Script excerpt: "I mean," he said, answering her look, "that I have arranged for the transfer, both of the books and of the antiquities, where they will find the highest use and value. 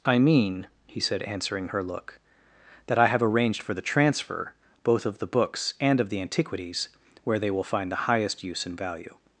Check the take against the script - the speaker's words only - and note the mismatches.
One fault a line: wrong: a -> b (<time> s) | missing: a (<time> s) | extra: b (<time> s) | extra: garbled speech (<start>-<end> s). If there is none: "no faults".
no faults